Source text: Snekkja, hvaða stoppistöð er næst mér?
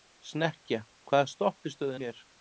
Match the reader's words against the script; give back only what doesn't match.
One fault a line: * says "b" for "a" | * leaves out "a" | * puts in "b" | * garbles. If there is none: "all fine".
* leaves out "næst"